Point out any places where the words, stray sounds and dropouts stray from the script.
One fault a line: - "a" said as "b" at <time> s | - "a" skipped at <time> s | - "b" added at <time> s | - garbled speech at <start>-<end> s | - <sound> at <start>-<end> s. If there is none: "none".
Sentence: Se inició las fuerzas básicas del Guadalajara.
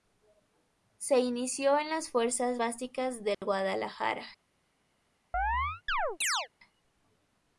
- "en" added at 1.8 s
- dropout at 3.3-3.4 s
- chirp at 5.3-6.5 s